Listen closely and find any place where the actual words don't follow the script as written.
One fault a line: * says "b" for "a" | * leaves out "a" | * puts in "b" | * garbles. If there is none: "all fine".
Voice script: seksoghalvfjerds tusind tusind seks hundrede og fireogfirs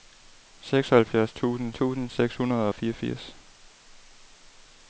all fine